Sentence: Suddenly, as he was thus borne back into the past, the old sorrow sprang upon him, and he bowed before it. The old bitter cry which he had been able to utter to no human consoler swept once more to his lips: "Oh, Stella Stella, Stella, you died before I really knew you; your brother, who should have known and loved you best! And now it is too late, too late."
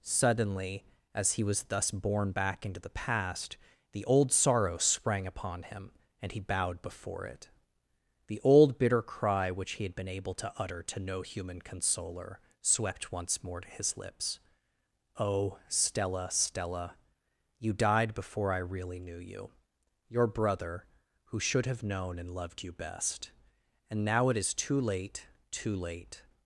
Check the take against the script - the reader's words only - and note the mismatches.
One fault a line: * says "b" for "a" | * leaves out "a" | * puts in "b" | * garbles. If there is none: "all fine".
* leaves out "Stella"